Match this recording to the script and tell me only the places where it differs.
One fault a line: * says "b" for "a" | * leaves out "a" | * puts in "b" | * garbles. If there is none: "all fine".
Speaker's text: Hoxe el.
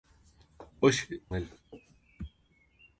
all fine